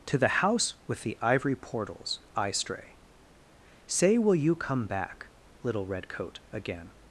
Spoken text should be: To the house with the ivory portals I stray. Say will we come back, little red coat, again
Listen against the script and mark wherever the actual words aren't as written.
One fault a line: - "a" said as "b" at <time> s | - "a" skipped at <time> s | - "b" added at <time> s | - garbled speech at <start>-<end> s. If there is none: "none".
- "we" said as "you" at 4.3 s